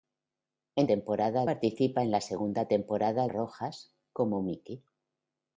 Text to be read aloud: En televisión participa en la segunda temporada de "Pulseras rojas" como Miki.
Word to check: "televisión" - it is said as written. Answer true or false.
false